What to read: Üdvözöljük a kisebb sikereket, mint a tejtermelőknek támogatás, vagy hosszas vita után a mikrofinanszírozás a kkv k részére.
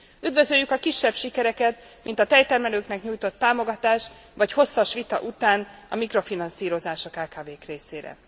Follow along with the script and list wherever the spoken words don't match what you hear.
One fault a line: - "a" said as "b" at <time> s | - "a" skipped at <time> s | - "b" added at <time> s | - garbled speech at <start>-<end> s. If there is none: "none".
- "nyújtott" added at 3.0 s